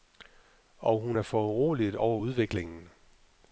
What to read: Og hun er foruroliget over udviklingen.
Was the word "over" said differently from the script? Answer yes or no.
no